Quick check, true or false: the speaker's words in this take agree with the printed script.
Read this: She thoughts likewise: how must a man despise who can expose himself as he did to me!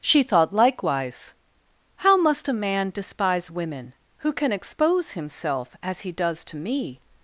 false